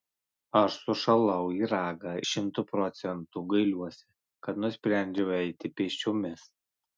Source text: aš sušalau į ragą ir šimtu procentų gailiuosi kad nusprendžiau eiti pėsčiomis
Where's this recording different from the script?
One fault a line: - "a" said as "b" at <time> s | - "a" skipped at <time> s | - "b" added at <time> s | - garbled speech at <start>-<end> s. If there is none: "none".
- "ir" skipped at 2.1 s